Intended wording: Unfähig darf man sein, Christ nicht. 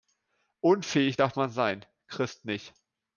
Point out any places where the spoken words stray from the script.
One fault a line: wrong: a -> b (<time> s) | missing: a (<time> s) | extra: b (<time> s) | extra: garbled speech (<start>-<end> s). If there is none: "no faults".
no faults